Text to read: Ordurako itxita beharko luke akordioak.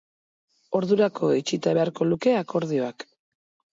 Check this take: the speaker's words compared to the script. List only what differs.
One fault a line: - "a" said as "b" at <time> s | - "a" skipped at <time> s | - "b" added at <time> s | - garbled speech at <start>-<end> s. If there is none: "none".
none